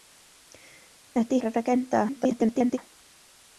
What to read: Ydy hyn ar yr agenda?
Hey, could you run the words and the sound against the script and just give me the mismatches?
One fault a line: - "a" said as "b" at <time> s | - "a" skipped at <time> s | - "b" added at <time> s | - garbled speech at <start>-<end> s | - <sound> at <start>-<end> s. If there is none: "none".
- "hyn" skipped at 1.4 s
- garbled speech at 2.1-2.8 s